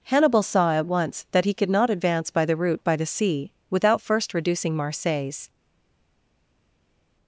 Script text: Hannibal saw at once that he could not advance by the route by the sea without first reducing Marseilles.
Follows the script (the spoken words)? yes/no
yes